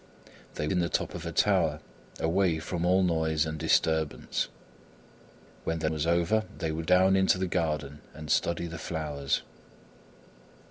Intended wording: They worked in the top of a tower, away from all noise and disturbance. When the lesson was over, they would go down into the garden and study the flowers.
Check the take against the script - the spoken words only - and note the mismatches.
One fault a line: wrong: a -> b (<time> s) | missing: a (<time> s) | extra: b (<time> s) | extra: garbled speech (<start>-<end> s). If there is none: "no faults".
missing: worked (0.7 s)
missing: lesson (5.9 s)
missing: go (6.9 s)